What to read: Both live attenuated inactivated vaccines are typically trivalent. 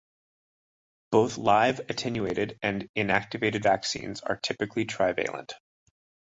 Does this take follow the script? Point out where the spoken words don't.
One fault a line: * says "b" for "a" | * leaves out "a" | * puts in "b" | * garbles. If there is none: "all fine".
* puts in "and"